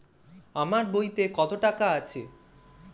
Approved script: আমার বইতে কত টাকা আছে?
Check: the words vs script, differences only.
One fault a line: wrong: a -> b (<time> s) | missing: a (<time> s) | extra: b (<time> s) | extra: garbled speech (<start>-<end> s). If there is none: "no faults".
no faults